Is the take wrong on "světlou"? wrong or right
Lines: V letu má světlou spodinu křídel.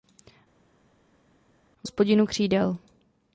wrong